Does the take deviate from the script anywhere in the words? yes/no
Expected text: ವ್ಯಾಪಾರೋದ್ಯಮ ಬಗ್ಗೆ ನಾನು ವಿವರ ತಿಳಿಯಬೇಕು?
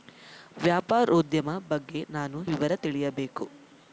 no